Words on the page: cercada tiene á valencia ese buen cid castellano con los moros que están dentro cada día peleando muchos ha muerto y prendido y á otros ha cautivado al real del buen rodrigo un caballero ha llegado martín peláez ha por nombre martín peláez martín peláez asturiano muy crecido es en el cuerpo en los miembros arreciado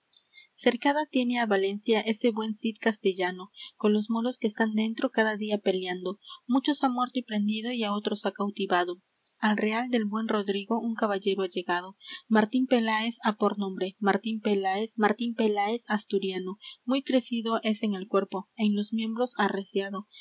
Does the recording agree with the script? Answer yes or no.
yes